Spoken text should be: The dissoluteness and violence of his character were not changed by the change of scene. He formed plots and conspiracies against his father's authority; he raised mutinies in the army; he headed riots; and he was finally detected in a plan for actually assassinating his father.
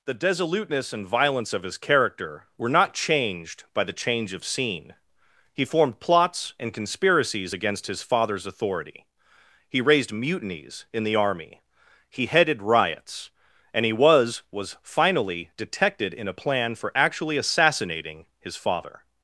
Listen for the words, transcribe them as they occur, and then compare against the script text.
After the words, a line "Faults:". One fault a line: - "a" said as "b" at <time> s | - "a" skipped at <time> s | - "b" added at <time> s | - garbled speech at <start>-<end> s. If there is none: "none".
The dissoluteness and violence of his character were not changed by the change of scene. He formed plots and conspiracies against his father's authority; he raised mutinies in the army; he headed riots; and he was was finally detected in a plan for actually assassinating his father.
Faults:
- "was" added at 14.5 s